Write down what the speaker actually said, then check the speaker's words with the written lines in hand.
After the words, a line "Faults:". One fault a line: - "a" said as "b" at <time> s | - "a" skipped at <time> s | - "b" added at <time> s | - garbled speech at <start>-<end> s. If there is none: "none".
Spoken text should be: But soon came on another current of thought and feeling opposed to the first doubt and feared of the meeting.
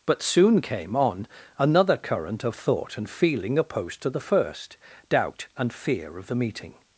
But soon came on another current of thought and feeling opposed to the first doubt and fear of the meeting.
Faults:
- "feared" said as "fear" at 5.7 s